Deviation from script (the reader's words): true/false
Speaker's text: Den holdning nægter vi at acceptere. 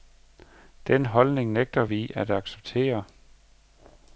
false